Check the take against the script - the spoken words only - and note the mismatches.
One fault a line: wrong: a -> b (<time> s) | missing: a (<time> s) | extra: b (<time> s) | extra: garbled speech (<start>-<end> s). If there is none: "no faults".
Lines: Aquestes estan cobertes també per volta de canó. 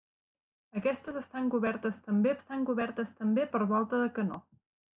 extra: estan cobertes també (2.4 s)